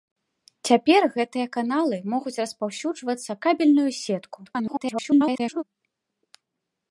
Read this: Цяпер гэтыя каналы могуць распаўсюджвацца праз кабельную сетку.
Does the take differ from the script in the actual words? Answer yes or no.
yes